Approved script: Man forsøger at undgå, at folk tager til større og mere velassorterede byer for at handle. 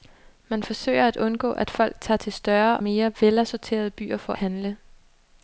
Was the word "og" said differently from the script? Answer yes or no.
yes